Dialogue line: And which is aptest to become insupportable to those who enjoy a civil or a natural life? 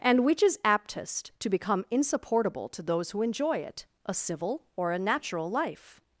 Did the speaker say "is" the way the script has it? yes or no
yes